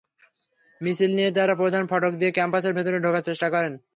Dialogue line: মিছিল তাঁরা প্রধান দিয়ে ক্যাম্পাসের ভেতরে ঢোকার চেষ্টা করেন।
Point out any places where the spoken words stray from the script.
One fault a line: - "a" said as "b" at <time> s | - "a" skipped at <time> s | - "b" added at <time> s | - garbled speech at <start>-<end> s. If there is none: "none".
- "নিয়ে" added at 1.2 s
- "ফটক" added at 1.9 s